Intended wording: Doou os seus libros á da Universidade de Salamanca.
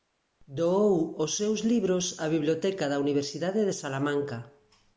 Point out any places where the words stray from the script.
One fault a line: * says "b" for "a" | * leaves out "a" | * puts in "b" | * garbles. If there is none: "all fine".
* puts in "biblioteca"